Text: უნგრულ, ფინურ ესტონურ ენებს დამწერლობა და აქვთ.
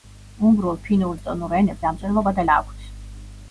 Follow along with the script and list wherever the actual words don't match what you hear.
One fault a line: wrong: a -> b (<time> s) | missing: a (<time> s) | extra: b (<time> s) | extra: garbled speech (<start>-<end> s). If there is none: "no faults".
no faults